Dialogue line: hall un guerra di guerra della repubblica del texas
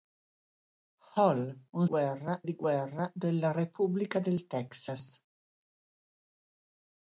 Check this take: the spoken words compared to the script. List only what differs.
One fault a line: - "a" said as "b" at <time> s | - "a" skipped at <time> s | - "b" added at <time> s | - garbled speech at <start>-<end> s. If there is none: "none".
none